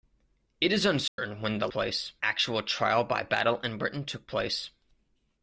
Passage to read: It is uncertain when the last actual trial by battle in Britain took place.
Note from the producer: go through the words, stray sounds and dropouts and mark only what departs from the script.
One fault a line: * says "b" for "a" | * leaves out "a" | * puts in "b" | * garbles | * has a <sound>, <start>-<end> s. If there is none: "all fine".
* has a dropout, 1.1-1.2 s
* says "place" for "last"